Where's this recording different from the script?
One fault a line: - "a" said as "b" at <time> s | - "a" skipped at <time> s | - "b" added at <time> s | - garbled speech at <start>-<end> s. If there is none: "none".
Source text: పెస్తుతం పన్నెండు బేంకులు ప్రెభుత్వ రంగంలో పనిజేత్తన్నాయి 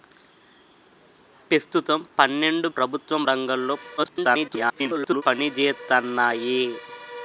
- "బేంకులు" skipped at 2.7 s
- garbled speech at 4.0-5.2 s